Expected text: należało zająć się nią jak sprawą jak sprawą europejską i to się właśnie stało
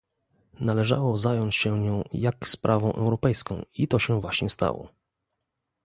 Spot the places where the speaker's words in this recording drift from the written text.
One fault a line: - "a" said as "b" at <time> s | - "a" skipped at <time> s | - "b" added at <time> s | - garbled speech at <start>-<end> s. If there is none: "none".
- "jak sprawą" skipped at 2.9 s